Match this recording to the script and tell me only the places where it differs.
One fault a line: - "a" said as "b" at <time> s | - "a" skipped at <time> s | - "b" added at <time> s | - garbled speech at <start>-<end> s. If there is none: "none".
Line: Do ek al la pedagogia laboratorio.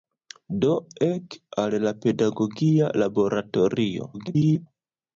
- garbled speech at 4.1-4.7 s